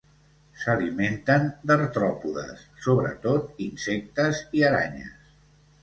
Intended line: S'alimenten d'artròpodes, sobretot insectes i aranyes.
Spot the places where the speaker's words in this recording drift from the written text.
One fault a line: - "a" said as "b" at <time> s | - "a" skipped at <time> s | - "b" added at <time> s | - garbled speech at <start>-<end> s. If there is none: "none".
none